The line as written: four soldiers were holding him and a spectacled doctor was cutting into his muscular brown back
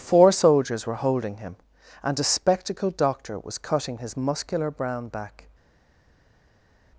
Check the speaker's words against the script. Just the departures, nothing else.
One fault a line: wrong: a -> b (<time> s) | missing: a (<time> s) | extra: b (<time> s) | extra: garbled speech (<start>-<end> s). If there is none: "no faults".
missing: into (4.0 s)